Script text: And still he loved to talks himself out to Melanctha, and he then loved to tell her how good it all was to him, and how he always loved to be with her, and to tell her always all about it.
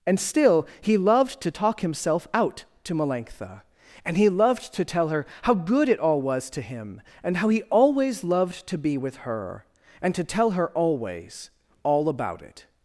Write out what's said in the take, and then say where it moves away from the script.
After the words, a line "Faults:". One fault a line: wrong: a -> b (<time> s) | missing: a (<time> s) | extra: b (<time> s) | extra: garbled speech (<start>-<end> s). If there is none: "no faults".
And still he loved to talk himself out to Melanctha, and he loved to tell her how good it all was to him, and how he always loved to be with her, and to tell her always all about it.
Faults:
wrong: talks -> talk (1.5 s)
missing: then (4.3 s)